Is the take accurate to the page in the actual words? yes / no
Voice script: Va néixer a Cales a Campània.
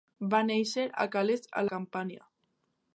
yes